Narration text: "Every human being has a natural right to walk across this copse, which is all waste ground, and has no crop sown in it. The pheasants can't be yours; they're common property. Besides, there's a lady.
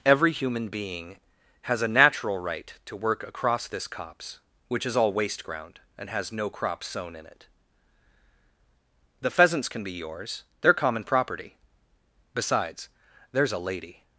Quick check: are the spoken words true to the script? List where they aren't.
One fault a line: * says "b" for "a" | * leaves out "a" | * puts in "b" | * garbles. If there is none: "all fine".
* says "work" for "walk"
* says "can" for "can't"